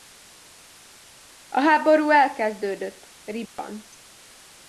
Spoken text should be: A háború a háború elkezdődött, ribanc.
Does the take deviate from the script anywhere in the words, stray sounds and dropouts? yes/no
yes